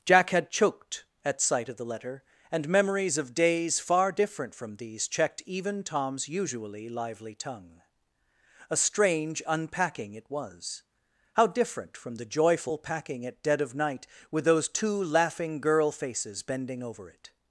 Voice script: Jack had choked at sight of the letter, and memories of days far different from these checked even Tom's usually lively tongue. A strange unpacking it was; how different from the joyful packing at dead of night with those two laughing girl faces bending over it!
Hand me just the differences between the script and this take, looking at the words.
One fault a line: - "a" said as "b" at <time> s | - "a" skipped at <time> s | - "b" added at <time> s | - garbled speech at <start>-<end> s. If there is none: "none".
none